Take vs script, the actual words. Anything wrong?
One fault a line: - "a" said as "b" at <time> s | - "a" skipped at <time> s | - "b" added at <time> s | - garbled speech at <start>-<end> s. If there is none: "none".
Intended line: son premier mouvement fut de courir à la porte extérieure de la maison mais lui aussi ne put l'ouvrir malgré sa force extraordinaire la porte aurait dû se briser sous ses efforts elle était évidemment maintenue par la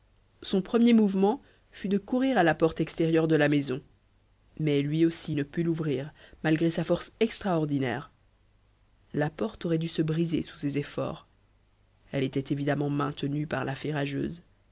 none